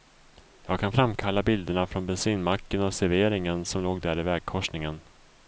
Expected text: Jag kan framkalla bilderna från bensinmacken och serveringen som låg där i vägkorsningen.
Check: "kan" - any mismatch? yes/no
no